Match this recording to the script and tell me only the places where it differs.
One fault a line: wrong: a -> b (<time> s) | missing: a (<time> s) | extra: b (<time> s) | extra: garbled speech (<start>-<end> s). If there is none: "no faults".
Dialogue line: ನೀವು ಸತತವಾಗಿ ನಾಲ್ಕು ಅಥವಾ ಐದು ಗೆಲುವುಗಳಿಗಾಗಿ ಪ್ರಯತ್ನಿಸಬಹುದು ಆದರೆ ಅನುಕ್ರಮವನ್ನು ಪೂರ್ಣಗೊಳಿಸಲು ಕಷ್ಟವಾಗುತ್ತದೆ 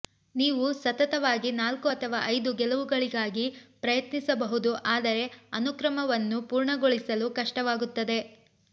no faults